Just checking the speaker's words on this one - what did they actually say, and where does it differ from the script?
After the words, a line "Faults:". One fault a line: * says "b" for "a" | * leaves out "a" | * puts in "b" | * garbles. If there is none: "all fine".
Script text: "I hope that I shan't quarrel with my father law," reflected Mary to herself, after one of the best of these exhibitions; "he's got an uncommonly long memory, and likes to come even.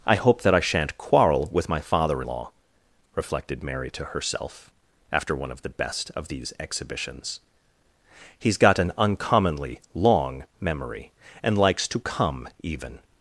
"I hope that I shan't quarrel with my father law," reflected Mary to herself, after one of the best of these exhibitions; "he's got an uncommonly long memory, and likes to come even.
Faults:
all fine